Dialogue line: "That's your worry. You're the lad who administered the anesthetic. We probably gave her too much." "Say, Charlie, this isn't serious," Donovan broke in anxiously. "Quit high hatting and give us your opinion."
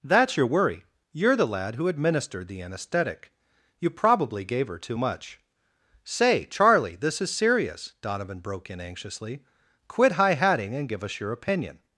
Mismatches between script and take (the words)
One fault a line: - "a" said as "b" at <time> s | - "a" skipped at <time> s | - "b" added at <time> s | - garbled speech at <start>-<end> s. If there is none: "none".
- "We" said as "You" at 3.8 s
- "isn't" said as "is" at 7.2 s